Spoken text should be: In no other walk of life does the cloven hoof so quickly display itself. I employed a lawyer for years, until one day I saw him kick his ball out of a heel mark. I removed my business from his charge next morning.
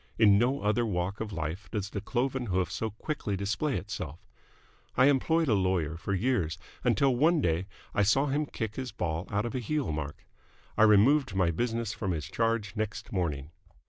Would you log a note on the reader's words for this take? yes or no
no